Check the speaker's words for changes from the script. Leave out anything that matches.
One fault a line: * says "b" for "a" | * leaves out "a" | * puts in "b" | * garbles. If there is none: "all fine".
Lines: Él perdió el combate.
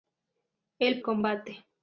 * leaves out "perdió el"